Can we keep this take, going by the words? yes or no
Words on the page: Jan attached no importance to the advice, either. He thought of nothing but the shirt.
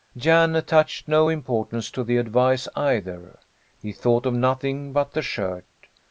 yes